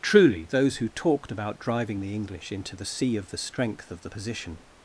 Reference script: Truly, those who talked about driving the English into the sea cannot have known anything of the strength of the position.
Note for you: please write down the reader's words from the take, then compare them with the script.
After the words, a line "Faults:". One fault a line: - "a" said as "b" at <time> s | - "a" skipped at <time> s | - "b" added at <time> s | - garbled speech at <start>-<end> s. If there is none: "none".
Truly, those who talked about driving the English into the sea of the strength of the position.
Faults:
- "cannot have known anything" skipped at 3.2 s